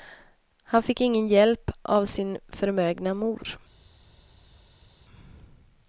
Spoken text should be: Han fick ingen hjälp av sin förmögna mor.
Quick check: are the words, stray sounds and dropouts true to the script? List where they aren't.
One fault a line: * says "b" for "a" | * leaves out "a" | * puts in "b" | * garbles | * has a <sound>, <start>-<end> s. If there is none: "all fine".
all fine